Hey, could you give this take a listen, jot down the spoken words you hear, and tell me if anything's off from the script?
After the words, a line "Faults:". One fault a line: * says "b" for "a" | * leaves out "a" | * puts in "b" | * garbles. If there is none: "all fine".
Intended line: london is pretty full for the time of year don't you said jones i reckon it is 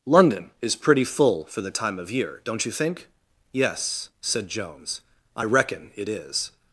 london is pretty full for the time of year don't you think yes said jones i reckon it is
Faults:
* puts in "think yes"